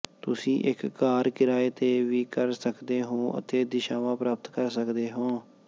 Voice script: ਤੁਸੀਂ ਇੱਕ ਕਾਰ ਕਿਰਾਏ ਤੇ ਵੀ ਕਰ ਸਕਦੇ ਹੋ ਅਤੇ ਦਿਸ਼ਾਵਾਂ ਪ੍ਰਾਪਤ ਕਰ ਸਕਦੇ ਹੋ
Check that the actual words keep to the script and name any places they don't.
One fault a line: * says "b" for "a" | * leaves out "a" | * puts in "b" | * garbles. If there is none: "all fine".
all fine